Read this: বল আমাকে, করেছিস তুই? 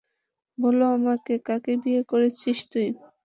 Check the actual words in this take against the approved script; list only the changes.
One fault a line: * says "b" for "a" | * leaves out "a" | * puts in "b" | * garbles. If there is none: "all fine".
* puts in "কাকে বিয়ে"